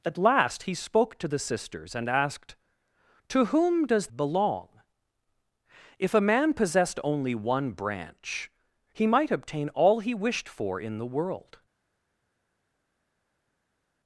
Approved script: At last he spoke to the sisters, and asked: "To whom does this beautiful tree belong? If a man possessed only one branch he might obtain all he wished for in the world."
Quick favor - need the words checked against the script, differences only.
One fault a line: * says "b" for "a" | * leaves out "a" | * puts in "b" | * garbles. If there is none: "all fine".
* leaves out "this beautiful tree"